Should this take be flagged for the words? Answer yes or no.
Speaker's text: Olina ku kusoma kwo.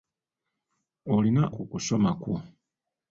no